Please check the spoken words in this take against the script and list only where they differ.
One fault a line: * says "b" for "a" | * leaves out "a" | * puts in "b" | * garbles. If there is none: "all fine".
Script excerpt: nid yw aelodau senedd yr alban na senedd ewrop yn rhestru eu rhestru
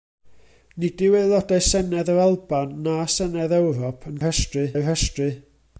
all fine